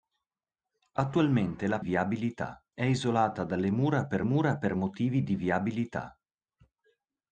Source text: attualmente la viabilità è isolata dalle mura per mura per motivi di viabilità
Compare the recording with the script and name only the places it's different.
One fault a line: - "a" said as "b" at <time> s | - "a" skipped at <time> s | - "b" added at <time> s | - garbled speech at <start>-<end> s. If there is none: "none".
none